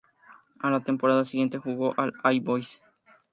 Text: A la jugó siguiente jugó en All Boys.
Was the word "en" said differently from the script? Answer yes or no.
no